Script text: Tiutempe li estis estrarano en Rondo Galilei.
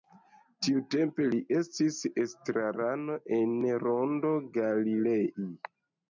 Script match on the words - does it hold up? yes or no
yes